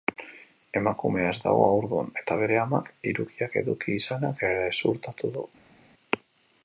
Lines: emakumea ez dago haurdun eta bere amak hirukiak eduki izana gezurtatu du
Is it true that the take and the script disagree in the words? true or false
false